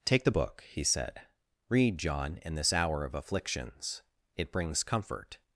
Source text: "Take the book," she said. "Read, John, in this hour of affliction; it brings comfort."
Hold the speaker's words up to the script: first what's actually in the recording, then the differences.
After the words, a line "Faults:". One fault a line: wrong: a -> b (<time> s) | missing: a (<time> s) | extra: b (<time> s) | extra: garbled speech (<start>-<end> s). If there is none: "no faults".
"Take the book," he said. "Read, John, in this hour of afflictions; it brings comfort."
Faults:
wrong: she -> he (0.7 s)
wrong: affliction -> afflictions (3.1 s)